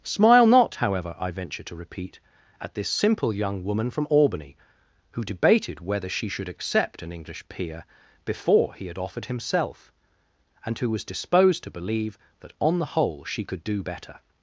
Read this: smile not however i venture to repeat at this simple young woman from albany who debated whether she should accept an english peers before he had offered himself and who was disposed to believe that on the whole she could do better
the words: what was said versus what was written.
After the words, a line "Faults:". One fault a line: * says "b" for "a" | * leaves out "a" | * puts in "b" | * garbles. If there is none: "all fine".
smile not however i venture to repeat at this simple young woman from albany who debated whether she should accept an english peer before he had offered himself and who was disposed to believe that on the whole she could do better
Faults:
* says "peer" for "peers"